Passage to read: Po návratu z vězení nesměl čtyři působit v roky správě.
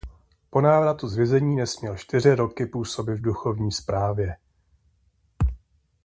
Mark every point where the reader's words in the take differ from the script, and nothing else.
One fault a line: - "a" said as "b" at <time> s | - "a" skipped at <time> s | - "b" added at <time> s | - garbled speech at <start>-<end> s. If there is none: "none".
- "roky" added at 2.4 s
- "roky" said as "duchovní" at 3.2 s